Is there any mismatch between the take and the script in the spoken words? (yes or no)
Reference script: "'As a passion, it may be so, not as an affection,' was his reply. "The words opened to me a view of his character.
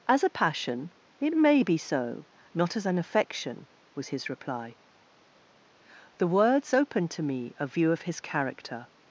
no